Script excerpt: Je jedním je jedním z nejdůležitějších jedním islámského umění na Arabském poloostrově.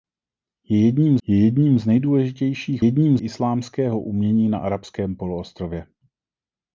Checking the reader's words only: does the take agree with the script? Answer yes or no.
yes